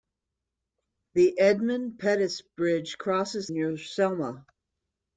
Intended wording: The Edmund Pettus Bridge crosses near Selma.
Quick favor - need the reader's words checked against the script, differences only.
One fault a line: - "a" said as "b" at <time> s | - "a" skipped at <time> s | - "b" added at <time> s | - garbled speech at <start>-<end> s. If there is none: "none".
none